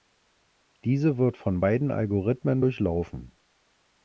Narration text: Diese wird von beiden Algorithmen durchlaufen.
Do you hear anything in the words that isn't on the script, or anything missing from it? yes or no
no